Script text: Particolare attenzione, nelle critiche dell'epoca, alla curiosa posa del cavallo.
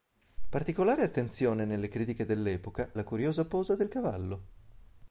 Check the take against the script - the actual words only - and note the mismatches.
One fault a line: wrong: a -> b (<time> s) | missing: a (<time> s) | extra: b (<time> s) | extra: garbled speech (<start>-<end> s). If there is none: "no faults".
no faults